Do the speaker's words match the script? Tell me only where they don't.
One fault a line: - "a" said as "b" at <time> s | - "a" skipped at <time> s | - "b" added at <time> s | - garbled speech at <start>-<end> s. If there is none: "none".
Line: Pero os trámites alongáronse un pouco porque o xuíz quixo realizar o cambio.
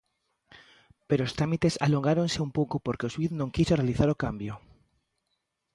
- "non" added at 3.4 s